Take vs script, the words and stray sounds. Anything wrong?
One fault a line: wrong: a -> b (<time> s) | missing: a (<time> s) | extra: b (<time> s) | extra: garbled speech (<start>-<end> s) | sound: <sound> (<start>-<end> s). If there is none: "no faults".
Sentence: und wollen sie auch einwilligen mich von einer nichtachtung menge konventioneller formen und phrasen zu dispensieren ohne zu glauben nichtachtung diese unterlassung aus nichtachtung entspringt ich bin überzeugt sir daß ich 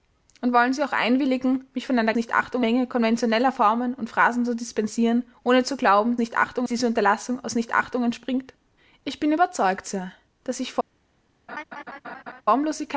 sound: laugh (11.5-12.4 s)